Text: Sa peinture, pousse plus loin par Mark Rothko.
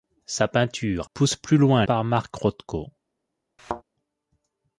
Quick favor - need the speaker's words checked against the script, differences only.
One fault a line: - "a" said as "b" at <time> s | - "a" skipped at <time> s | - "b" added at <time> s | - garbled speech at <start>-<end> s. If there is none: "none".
none